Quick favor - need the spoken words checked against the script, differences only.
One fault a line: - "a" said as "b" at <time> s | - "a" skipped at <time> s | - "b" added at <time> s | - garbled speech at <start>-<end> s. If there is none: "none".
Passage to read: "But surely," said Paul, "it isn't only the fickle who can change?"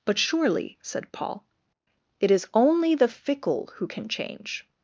- "isn't" said as "is" at 2.3 s